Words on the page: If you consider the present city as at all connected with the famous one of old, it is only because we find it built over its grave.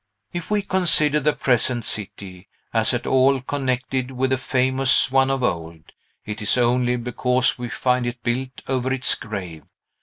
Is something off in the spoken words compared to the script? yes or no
yes